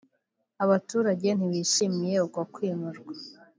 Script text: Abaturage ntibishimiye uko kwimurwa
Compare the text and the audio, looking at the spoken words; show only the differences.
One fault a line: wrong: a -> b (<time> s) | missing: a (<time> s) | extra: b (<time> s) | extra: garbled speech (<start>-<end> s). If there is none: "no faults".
no faults